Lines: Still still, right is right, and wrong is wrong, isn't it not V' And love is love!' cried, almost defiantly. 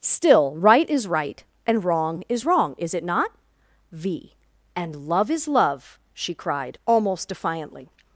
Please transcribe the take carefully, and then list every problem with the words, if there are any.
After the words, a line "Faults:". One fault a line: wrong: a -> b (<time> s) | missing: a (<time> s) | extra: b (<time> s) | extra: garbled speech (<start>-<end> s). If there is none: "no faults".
Still, right is right, and wrong is wrong, is it not V' And love is love!' she cried, almost defiantly.
Faults:
missing: still (0.6 s)
wrong: isn't -> is (2.8 s)
extra: she (6.1 s)